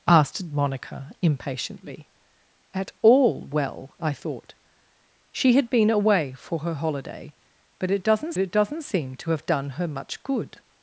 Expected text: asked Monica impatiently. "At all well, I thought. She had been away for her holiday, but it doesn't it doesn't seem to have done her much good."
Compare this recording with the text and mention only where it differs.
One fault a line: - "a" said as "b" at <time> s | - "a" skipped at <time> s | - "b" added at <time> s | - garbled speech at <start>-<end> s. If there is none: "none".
none